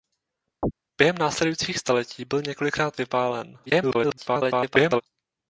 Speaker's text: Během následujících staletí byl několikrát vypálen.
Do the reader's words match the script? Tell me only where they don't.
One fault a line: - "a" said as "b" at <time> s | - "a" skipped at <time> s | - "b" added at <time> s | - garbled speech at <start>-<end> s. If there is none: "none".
- garbled speech at 3.7-5.0 s